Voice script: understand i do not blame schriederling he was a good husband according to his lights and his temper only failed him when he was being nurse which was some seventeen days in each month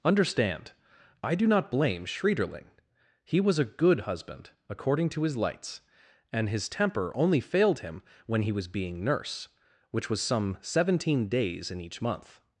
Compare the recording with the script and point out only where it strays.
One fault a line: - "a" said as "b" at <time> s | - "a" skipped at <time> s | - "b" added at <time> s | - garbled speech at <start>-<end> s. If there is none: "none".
none